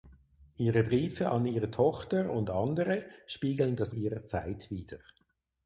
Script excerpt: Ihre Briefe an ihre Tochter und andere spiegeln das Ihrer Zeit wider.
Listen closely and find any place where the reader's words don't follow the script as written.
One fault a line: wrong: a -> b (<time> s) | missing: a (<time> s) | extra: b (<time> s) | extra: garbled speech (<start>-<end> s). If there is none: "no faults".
no faults